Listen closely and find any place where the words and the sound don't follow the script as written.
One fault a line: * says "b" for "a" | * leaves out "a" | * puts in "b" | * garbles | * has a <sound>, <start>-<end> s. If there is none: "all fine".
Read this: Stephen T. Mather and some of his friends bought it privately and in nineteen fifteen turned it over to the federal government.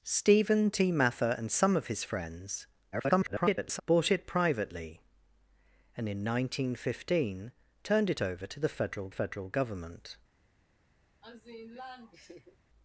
* garbles
* puts in "federal"
* has a laugh, 11.2-12.6 s